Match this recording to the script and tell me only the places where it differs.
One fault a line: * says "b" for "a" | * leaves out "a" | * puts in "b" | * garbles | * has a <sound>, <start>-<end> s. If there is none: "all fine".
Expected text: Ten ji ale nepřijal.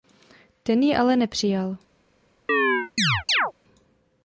* has a chirp, 2.5-3.5 s